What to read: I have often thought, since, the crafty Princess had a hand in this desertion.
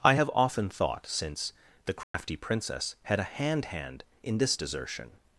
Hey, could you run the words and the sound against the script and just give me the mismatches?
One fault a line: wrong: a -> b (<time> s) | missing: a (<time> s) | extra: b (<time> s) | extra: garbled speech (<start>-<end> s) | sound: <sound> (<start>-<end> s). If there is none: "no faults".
sound: dropout (2.0-2.1 s)
extra: hand (3.7 s)